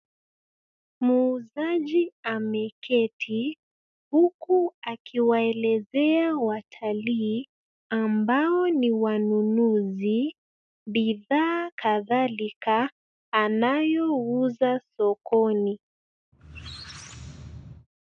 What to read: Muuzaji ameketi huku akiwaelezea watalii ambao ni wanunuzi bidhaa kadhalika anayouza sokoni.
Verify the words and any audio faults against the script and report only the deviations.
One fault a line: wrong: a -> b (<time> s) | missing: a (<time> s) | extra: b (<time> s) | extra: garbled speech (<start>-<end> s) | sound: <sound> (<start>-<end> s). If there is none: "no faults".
sound: squeak (16.3-17.9 s)